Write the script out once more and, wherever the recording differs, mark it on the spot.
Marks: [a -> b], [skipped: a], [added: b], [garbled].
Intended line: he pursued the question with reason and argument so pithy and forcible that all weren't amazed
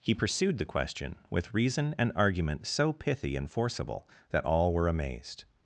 he pursued the question with reason and argument so pithy and forcible that all [weren't -> were] amazed